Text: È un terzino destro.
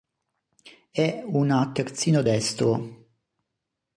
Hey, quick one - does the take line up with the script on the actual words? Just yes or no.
no